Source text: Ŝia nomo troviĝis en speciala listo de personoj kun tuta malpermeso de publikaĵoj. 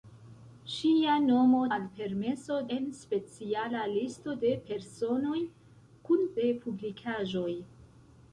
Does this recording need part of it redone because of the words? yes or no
yes